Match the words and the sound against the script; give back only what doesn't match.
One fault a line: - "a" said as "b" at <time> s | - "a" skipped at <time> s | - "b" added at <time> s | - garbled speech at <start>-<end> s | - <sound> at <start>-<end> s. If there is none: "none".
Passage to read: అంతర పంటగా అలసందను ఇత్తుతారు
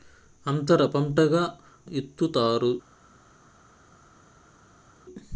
- "అలసందను" skipped at 1.4 s